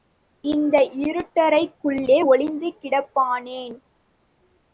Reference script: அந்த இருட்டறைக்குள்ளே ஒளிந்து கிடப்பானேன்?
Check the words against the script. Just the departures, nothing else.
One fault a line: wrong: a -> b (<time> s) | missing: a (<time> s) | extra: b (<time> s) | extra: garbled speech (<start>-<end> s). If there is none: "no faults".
wrong: அந்த -> இந்த (0.4 s)